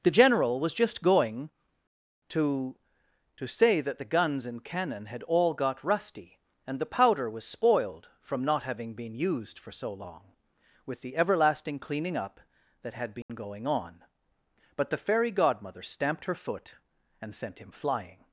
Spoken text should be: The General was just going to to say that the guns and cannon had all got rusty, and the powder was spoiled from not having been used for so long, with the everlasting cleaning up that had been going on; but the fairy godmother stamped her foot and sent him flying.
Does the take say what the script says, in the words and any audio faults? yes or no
no